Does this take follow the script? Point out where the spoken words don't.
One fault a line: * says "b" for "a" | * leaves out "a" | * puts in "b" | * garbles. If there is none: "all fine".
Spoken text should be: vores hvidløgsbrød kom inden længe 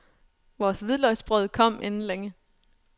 all fine